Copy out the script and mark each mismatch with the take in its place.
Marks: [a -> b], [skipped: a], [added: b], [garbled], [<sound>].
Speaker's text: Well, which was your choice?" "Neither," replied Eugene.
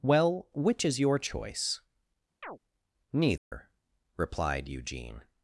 Well, which [was -> is] your choice?" [chirp] "Neither," [dropout] replied Eugene.